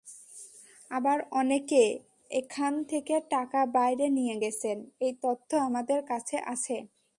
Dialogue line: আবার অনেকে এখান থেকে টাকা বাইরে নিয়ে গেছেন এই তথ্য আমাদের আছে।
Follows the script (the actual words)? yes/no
no